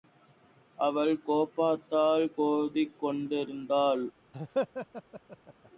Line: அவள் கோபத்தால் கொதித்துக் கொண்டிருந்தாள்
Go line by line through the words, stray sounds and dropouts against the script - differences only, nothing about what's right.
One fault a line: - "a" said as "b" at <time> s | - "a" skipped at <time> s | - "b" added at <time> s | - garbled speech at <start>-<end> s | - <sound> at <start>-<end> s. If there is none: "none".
- laugh at 4.3-5.7 s